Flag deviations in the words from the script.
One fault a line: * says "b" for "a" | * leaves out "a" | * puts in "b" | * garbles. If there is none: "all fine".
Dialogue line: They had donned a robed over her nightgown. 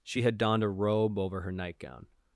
* says "She" for "They"
* says "robe" for "robed"